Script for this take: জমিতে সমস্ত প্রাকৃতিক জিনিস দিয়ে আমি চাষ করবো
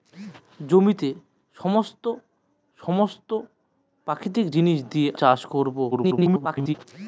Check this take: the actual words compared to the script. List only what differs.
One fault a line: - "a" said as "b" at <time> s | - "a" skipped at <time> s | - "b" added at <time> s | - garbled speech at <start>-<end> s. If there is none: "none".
- "সমস্ত" added at 2.8 s
- "আমি" skipped at 5.1 s
- garbled speech at 5.9-6.7 s